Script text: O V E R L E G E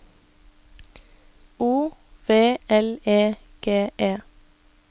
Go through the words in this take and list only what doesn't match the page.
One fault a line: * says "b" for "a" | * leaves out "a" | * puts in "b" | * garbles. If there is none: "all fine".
* leaves out "E R"